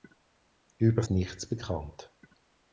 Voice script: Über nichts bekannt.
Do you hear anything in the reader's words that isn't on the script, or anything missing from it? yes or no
no